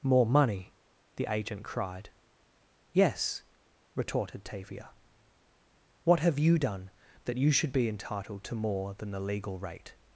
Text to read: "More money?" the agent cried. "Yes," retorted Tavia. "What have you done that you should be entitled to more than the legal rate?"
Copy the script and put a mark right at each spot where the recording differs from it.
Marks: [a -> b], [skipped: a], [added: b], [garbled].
"More money?" the agent cried. "Yes," retorted Tavia. "What have you done that you should be entitled to more than the legal rate?"